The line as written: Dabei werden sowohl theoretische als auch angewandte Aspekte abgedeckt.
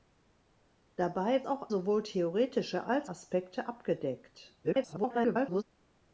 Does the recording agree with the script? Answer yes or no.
no